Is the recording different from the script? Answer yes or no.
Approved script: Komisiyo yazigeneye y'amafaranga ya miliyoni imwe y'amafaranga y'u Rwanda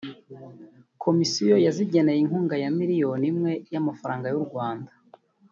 yes